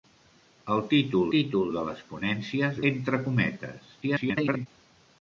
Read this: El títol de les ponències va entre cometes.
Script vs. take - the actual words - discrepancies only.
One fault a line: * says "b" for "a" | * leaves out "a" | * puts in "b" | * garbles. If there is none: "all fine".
* puts in "títol"
* leaves out "va"
* garbles